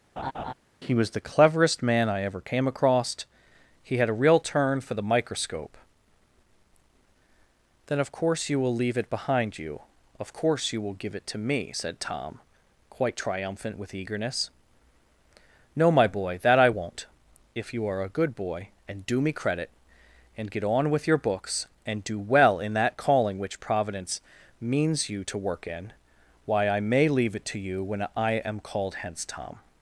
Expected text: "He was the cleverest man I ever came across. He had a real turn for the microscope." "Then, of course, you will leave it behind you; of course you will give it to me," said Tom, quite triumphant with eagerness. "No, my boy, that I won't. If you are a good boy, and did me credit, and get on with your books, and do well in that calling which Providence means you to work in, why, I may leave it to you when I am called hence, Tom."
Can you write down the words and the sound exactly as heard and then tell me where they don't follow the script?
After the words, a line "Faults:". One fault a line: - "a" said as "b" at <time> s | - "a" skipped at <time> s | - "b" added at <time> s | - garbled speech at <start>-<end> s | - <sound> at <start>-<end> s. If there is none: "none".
"He was the cleverest man I ever came across. He had a real turn for the microscope." "Then, of course, you will leave it behind you; of course you will give it to me," said Tom, quite triumphant with eagerness. "No, my boy, that I won't. If you are a good boy, and do me credit, and get on with your books, and do well in that calling which Providence means you to work in, why, I may leave it to you when I am called hence, Tom."
Faults:
- laugh at 0.2-0.5 s
- "did" said as "do" at 19.0 s